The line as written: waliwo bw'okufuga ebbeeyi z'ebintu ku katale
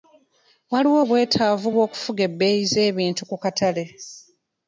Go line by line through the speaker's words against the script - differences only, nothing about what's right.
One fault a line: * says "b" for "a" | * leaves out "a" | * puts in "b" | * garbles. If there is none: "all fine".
* puts in "obwetaavu"